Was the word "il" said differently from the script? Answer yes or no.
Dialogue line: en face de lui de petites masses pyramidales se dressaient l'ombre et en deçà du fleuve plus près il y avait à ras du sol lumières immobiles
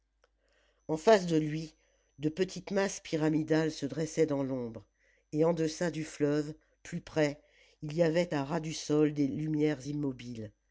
no